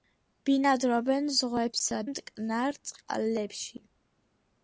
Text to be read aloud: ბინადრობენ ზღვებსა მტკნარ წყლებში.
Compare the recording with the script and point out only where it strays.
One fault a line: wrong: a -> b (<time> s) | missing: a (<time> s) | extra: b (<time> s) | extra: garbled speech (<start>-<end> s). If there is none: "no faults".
no faults